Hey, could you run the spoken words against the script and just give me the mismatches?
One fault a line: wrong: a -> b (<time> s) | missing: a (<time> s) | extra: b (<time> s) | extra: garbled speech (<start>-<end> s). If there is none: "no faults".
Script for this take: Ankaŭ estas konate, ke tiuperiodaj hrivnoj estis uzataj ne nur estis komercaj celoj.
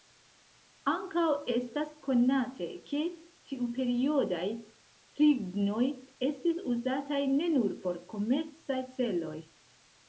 wrong: estis -> por (7.8 s)